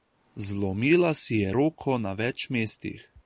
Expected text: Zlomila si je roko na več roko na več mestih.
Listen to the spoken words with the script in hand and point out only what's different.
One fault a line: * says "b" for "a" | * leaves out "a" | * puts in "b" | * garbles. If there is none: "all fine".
* leaves out "roko na več"